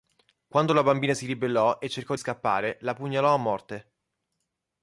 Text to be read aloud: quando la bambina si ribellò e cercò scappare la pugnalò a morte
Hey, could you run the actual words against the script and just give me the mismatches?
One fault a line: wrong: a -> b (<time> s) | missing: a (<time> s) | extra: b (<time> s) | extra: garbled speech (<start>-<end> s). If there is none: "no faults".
no faults